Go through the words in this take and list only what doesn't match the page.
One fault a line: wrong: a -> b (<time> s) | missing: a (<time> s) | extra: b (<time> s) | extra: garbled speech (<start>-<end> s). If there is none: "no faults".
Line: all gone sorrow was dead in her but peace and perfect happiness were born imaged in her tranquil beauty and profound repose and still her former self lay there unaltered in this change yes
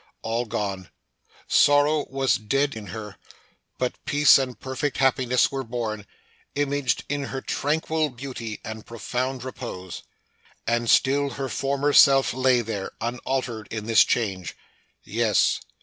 no faults